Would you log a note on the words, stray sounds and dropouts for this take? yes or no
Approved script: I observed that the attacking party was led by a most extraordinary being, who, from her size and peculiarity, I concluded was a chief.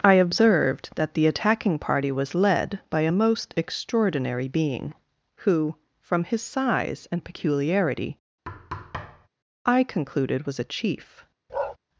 yes